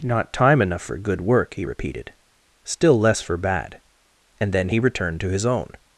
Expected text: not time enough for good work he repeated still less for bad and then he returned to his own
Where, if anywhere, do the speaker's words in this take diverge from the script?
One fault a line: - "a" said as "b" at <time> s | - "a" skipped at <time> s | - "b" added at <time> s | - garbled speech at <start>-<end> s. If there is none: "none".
none